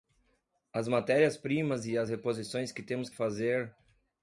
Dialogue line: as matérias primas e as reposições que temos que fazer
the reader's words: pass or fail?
fail